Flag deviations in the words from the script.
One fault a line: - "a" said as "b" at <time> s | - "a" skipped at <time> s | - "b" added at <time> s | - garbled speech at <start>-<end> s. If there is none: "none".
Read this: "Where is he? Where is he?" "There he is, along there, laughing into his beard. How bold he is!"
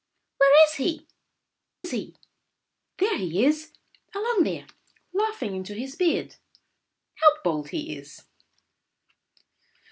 - "Where" skipped at 1.1 s